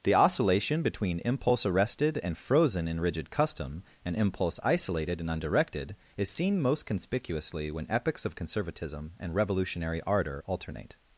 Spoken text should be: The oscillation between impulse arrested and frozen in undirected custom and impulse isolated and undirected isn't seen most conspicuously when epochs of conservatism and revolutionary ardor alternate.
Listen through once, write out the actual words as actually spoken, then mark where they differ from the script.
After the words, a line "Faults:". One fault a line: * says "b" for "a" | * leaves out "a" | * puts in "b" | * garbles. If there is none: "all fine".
The oscillation between impulse arrested and frozen in rigid custom and impulse isolated and undirected is seen most conspicuously when epochs of conservatism and revolutionary ardor alternate.
Faults:
* says "rigid" for "undirected"
* says "is" for "isn't"